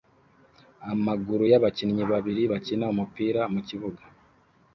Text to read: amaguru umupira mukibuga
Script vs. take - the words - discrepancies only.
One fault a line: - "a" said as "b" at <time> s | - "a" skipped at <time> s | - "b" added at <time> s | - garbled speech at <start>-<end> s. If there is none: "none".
- "y'abakinnyi babiri bakina" added at 1.5 s